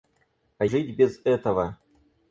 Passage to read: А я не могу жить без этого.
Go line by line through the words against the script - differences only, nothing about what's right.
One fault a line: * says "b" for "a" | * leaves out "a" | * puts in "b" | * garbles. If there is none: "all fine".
* leaves out "я не могу"